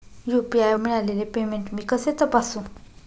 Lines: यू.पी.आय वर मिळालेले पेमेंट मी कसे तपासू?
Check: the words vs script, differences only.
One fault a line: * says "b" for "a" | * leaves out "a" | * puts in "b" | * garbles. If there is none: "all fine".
* leaves out "वर"